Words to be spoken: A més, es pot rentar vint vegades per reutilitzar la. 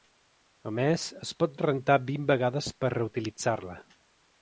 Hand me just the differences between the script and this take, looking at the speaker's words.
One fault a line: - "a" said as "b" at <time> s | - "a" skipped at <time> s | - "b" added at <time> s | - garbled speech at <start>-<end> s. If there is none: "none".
none